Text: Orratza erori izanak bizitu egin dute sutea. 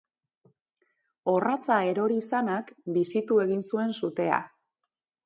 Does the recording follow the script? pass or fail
fail